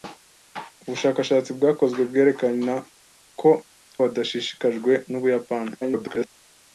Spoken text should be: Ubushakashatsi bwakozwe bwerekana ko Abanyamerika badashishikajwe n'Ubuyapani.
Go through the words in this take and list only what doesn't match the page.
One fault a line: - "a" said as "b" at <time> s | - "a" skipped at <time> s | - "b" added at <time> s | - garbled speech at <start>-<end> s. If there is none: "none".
- "Abanyamerika" skipped at 3.5 s
- garbled speech at 5.8-6.3 s